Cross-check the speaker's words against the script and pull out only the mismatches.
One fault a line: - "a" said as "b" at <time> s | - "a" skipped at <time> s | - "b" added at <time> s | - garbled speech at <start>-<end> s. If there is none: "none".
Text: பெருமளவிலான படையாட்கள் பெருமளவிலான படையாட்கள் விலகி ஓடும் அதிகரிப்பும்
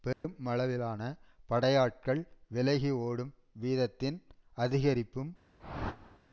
- "பெருமளவிலான படையாட்கள்" skipped at 2.2 s
- "வீதத்தின்" added at 3.6 s